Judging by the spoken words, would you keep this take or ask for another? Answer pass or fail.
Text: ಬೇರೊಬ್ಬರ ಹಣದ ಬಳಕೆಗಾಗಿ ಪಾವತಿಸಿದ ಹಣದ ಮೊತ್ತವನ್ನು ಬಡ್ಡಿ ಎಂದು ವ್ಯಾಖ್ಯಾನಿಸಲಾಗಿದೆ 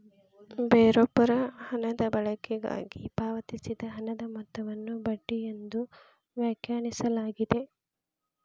pass